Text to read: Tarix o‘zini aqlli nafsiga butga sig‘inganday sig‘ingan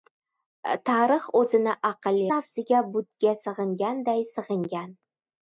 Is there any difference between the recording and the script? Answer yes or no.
no